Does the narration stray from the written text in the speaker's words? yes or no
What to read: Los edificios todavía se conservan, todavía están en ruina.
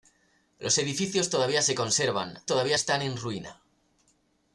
no